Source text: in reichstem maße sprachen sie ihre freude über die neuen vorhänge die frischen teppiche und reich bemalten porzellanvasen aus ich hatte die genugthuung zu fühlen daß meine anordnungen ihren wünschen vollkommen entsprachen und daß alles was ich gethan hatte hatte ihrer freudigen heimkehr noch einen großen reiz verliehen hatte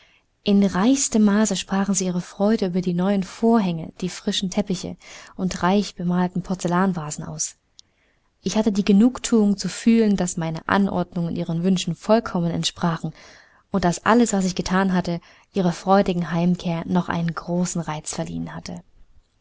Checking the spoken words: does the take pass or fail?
fail